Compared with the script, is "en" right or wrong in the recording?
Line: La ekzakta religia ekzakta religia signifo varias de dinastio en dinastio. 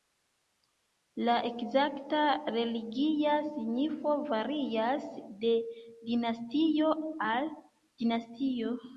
wrong